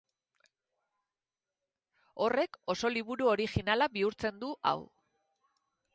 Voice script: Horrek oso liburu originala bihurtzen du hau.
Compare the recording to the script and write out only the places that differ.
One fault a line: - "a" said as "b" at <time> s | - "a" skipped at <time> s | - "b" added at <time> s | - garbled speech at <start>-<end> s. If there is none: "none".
none